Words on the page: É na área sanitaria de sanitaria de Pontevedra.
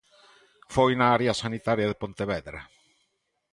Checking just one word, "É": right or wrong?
wrong